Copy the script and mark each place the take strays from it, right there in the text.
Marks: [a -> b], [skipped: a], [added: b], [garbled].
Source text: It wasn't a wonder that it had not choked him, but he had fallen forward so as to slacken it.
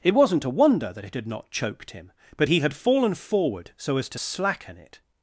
It wasn't a wonder that it had not choked him, but he had fallen forward so as to slacken it.